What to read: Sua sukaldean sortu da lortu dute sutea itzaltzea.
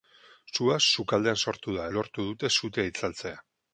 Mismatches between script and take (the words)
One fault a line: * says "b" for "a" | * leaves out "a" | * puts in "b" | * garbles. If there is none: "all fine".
all fine